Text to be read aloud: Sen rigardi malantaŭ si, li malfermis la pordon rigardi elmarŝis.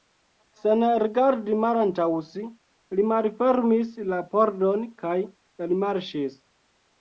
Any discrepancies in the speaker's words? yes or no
yes